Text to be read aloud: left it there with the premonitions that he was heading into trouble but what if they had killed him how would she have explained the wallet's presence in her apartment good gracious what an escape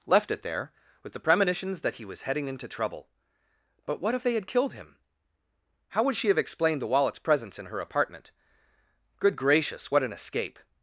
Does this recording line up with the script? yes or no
yes